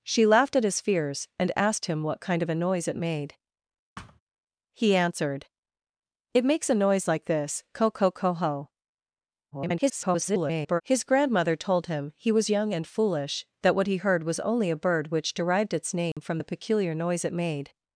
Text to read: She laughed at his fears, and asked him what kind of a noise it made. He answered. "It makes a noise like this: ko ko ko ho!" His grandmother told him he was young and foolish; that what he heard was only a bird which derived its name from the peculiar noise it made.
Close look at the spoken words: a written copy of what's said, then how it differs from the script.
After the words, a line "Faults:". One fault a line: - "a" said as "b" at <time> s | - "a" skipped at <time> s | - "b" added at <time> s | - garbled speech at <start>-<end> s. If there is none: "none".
She laughed at his fears, and asked him what kind of a noise it made. He answered. "It makes a noise like this: ko ko ko ho!" [garbled] His grandmother told him he was young and foolish; that what he heard was only a bird which derived its name from the peculiar noise it made.
Faults:
- garbled speech at 9.5-10.8 s